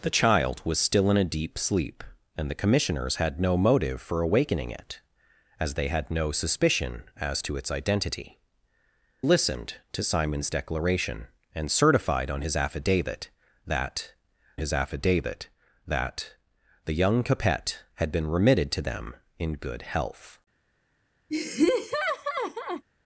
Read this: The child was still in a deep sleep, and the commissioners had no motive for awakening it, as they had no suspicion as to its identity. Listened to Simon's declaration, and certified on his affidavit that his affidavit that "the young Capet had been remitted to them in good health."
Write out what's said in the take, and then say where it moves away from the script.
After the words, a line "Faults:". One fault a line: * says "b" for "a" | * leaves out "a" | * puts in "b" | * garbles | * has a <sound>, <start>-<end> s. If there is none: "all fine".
The child was still in a deep sleep, and the commissioners had no motive for awakening it, as they had no suspicion as to its identity. Listened to Simon's declaration, and certified on his affidavit that his affidavit that "the young Capet had been remitted to them in good health."
Faults:
* has a laugh, 21.3-22.8 s